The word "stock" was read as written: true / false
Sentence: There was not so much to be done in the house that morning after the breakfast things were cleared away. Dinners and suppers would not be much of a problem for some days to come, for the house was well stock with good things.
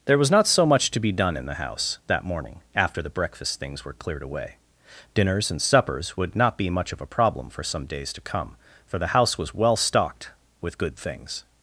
false